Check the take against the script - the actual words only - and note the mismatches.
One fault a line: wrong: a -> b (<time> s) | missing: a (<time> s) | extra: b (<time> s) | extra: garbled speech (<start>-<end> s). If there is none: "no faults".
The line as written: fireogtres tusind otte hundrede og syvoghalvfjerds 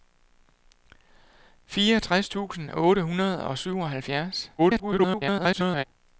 extra: garbled speech (4.6-5.8 s)